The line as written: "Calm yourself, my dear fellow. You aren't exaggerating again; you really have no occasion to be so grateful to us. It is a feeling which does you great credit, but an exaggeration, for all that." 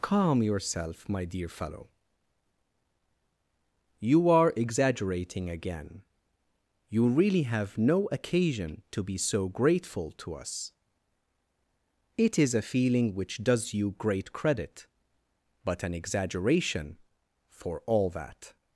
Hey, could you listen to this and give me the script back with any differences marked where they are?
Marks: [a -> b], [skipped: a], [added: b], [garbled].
"Calm yourself, my dear fellow. You [aren't -> are] exaggerating again; you really have no occasion to be so grateful to us. It is a feeling which does you great credit, but an exaggeration, for all that."